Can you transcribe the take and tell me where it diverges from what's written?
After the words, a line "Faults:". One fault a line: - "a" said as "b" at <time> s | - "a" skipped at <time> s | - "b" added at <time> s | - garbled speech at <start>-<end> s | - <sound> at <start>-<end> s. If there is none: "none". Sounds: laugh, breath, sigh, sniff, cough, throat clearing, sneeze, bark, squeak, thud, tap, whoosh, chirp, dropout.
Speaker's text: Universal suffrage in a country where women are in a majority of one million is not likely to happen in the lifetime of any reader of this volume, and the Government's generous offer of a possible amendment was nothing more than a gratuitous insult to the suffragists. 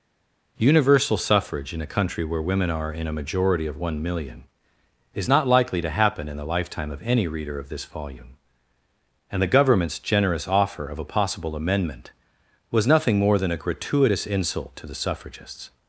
Universal suffrage in a country where women are in a majority of one million is not likely to happen in the lifetime of any reader of this volume, and the Government's generous offer of a possible amendment was nothing more than a gratuitous insult to the suffragists.
Faults:
none